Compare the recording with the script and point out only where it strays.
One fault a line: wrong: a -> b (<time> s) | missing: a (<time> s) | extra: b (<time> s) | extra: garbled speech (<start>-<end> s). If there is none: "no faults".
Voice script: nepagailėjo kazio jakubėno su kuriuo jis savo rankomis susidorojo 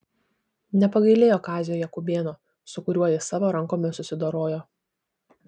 no faults